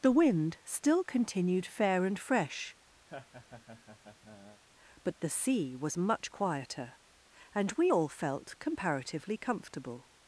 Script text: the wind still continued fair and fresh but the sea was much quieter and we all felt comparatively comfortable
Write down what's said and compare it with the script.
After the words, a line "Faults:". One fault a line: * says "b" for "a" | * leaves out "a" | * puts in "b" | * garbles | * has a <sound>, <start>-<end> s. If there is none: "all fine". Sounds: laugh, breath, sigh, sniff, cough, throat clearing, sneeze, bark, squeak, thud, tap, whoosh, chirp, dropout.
the wind still continued fair and fresh but the sea was much quieter and we all felt comparatively comfortable
Faults:
* has a laugh, 3.1-4.6 s